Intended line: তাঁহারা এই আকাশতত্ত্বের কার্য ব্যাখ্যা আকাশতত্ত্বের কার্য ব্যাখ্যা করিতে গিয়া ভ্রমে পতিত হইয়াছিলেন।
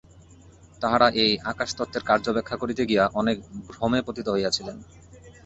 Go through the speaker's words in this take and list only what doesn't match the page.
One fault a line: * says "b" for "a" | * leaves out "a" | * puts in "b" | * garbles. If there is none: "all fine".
* leaves out "আকাশতত্ত্বের কার্য ব্যাখ্যা"
* puts in "অনেক"